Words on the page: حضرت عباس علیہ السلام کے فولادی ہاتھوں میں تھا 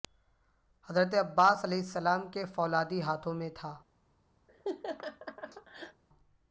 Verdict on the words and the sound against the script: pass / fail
fail